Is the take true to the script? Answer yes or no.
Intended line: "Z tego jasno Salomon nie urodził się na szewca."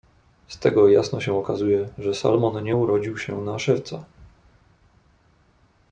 no